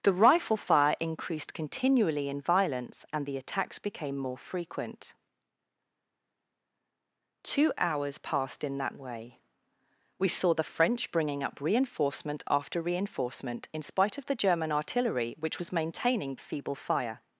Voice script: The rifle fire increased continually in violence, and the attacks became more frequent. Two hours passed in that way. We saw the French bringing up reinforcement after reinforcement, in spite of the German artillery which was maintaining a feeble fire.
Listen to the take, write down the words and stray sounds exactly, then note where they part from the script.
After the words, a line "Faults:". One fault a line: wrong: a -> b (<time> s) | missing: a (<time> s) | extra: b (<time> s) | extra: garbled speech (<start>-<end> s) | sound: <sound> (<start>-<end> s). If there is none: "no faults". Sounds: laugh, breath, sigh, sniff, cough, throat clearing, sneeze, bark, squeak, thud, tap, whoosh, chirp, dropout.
The rifle fire increased continually in violence, and the attacks became more frequent. Two hours passed in that way. We saw the French bringing up reinforcement after reinforcement, in spite of the German artillery which was maintaining a feeble fire.
Faults:
no faults